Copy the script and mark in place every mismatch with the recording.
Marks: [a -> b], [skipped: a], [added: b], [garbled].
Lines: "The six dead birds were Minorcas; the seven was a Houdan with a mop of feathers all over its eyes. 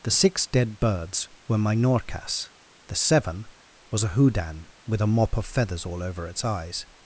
"The six dead birds were Minorcas; the seven was a Houdan with a mop of feathers all over its eyes.